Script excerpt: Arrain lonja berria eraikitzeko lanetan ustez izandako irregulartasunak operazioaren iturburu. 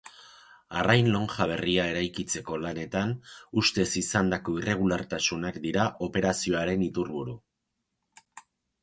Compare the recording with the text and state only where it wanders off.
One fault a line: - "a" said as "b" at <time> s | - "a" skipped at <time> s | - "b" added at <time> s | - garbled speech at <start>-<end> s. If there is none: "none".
- "dira" added at 5.7 s